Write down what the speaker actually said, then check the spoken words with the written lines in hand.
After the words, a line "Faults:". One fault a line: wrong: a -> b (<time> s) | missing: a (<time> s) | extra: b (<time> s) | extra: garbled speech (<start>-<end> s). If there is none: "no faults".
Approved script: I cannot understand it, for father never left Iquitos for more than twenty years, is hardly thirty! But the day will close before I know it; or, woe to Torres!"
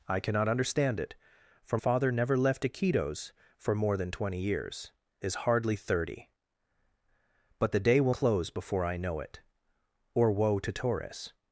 I cannot understand it, for father never left Iquitos for more than twenty years, is hardly thirty! But the day will close before I know it; or, woe to Torres!"
Faults:
no faults